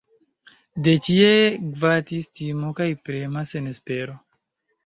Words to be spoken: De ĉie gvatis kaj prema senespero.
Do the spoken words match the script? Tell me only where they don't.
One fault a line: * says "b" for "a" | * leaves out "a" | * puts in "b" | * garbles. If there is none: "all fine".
* puts in "timo"